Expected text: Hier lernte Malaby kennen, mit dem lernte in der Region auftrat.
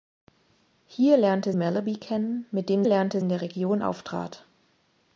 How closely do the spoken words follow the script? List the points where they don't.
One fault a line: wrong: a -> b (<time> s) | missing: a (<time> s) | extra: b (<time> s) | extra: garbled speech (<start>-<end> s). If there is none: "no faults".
no faults